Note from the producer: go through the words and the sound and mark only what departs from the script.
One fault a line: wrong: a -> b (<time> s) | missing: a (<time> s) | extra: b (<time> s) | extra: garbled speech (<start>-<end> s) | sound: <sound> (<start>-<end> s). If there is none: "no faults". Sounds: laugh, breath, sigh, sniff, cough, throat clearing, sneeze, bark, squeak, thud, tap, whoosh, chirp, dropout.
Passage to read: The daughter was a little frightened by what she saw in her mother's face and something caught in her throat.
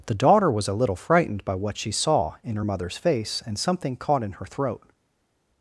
no faults